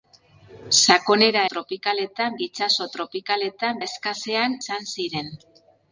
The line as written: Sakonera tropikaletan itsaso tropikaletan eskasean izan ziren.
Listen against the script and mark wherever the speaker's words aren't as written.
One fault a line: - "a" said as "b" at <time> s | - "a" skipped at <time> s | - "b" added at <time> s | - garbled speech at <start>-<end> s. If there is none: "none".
none